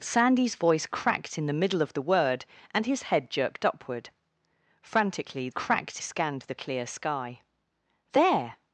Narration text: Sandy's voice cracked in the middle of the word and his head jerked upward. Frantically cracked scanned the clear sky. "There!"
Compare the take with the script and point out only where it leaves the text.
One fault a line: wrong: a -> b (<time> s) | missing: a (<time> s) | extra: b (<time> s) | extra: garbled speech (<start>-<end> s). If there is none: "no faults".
no faults